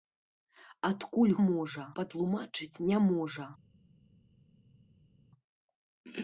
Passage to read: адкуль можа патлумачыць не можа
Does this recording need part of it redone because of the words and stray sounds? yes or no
no